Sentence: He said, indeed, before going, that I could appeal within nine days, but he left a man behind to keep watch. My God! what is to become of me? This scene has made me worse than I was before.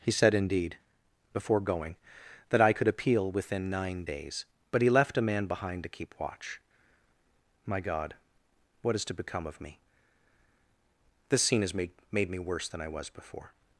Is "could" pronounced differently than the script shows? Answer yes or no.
no